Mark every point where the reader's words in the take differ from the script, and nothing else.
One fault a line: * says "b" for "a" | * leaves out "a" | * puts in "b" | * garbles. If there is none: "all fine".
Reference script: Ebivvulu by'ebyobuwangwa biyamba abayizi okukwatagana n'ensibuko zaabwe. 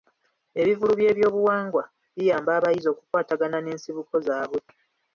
all fine